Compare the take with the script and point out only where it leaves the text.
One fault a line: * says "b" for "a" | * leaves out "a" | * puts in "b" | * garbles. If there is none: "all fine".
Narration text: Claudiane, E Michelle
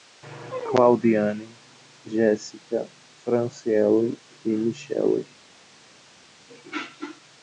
* puts in "Géssica Franciele"